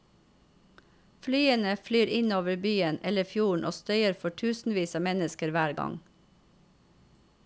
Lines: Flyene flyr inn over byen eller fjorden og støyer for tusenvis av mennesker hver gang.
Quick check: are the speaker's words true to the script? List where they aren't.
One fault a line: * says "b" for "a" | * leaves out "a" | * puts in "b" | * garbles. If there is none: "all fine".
all fine